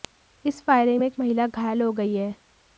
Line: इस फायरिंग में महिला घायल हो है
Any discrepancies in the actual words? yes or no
yes